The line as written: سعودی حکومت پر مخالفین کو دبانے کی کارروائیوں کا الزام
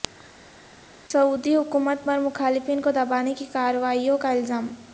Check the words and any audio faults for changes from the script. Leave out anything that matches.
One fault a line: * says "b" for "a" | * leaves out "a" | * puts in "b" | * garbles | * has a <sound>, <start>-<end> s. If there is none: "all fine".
all fine